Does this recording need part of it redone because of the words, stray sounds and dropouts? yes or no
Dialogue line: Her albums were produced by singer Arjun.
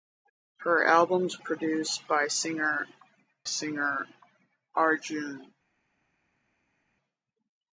yes